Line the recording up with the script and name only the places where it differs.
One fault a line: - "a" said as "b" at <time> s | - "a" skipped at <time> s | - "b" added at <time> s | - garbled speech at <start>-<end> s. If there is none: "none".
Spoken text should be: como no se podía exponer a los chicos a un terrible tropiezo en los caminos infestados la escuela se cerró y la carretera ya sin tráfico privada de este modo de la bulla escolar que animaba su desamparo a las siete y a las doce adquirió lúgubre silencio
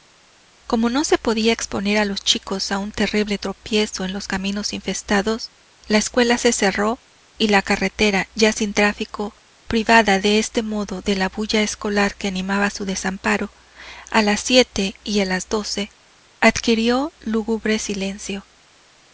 none